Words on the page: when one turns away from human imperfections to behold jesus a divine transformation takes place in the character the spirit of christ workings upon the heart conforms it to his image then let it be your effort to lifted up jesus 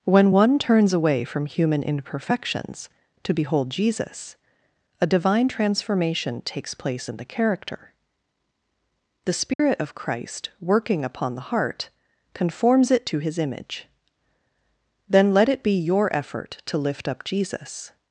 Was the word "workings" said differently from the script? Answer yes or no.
yes